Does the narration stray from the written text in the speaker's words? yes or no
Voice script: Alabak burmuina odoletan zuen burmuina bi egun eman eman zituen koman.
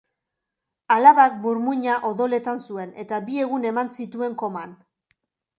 yes